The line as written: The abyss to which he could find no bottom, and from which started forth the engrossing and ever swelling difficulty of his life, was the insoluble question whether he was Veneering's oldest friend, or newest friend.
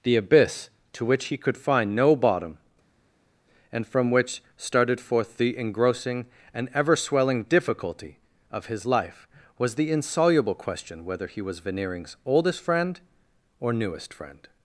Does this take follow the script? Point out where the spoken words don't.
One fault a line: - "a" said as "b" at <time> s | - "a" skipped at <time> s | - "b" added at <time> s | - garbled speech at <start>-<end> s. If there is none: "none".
none